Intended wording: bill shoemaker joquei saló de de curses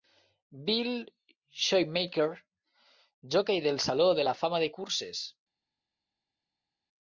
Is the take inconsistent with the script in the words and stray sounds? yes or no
yes